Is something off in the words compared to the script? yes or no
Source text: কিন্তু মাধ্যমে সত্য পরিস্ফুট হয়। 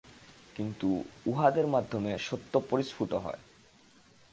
yes